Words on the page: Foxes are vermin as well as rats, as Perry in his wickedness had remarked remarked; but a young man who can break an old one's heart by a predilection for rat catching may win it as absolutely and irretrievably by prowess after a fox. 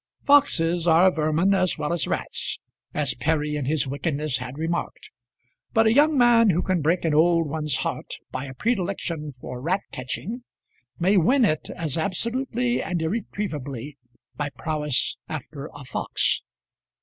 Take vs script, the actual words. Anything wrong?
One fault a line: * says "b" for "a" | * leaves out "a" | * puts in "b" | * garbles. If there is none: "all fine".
* leaves out "remarked"